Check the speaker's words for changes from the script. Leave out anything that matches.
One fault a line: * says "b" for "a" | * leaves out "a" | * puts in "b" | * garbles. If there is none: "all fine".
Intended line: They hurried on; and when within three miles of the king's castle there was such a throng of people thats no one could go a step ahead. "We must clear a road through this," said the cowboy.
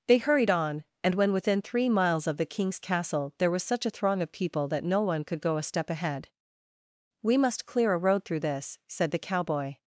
* says "that" for "thats"